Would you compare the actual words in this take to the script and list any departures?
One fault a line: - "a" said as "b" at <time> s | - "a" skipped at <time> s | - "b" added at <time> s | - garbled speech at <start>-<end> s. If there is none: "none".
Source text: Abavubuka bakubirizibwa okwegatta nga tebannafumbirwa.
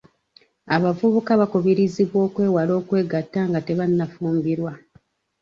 - "okwewala" added at 2.3 s